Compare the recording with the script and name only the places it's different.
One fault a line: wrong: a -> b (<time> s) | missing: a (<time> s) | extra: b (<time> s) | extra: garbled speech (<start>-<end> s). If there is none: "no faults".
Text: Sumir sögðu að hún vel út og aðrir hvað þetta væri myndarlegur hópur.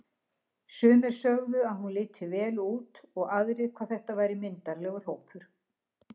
extra: liti (2.0 s)